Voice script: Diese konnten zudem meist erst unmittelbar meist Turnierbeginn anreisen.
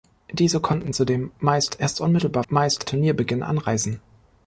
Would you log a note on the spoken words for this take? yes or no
no